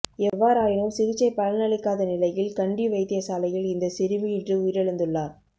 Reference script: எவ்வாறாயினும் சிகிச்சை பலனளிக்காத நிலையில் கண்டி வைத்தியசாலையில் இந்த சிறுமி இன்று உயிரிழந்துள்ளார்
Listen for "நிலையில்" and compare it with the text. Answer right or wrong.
right